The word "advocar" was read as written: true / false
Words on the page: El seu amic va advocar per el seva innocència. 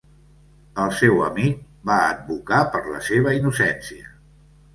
true